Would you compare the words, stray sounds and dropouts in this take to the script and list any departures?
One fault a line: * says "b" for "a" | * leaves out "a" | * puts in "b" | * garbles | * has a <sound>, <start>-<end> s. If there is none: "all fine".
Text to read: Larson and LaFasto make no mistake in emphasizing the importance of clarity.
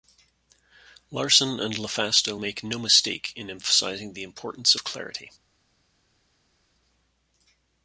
all fine